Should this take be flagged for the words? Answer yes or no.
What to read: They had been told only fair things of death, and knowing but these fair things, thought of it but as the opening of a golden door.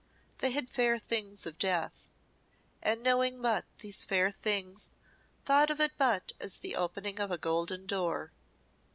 yes